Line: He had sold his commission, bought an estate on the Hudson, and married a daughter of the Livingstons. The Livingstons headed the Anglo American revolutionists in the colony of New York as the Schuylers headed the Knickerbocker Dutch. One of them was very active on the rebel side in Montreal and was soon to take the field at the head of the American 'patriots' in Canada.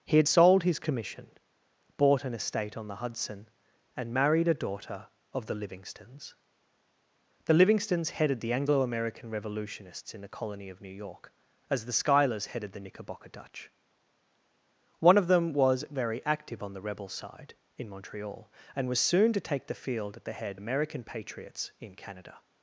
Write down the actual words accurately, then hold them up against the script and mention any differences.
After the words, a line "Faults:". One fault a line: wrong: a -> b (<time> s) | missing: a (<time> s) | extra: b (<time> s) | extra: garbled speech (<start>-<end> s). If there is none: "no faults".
He had sold his commission, bought an estate on the Hudson, and married a daughter of the Livingstons. The Livingstons headed the Anglo American revolutionists in the colony of New York as the Schuylers headed the Knickerbocker Dutch. One of them was very active on the rebel side in Montreal and was soon to take the field at the head American 'patriots' in Canada.
Faults:
missing: of the (20.6 s)